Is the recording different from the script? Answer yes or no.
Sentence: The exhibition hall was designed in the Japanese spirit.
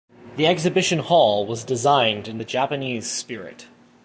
no